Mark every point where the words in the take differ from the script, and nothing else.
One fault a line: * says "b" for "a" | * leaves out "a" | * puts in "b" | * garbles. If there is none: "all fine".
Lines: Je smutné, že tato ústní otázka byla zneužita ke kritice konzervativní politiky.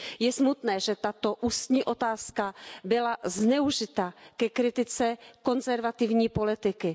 all fine